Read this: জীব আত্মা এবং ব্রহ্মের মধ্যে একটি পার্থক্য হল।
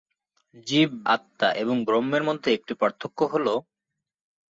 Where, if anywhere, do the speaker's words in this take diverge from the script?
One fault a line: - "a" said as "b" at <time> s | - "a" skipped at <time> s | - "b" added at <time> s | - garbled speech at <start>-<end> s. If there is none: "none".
none